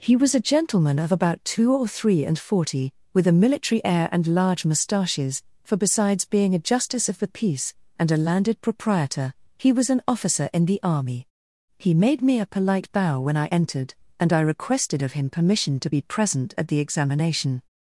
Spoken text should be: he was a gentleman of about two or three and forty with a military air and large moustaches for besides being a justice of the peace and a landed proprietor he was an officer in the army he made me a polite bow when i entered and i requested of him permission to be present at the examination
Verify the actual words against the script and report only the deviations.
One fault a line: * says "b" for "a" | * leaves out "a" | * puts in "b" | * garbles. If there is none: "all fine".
all fine